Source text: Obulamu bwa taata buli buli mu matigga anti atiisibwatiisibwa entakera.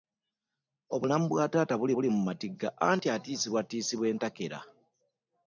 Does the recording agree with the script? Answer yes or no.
yes